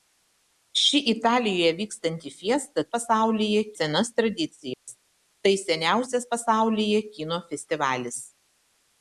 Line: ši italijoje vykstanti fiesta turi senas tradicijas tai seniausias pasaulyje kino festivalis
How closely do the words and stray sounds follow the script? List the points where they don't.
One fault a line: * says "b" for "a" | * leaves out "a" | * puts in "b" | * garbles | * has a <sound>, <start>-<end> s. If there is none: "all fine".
* says "pasaulyje" for "turi"
* has a dropout, 4.7-4.9 s